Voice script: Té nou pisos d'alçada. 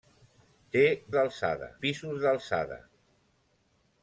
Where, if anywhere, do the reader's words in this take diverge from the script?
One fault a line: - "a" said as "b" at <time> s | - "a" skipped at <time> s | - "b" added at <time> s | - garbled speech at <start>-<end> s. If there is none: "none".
- "nou" said as "d'alçada" at 1.2 s